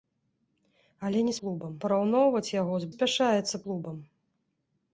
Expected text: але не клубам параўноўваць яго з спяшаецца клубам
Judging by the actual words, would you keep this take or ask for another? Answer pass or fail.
pass